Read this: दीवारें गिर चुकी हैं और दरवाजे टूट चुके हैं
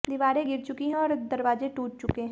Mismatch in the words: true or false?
false